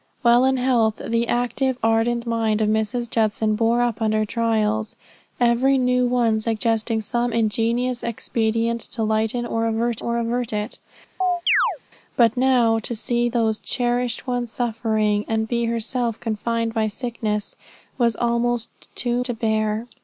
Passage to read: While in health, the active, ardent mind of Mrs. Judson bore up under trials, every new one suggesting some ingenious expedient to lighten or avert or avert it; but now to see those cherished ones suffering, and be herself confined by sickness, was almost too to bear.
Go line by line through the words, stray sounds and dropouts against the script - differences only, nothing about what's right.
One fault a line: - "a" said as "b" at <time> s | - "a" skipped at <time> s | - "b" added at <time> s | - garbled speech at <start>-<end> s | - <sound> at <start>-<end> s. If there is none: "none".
- chirp at 11.2-11.8 s